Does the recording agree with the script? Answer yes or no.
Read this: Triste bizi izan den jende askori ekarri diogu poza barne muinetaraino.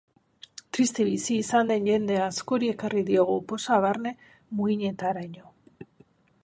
yes